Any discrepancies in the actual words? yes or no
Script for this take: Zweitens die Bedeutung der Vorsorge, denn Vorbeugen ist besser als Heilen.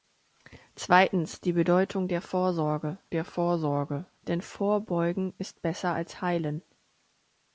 yes